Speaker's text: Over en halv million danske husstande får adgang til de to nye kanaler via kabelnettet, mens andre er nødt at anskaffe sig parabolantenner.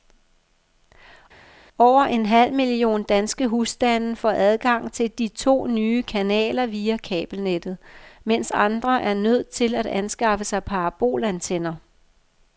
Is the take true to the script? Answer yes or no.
no